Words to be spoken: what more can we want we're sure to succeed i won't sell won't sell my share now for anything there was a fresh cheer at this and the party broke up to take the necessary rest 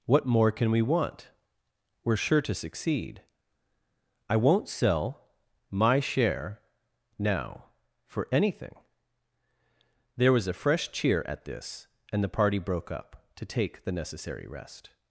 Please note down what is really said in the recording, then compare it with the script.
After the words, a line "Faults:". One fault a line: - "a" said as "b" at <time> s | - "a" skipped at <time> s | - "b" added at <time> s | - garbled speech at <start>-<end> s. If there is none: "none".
what more can we want we're sure to succeed i won't sell my share now for anything there was a fresh cheer at this and the party broke up to take the necessary rest
Faults:
- "won't sell" skipped at 5.3 s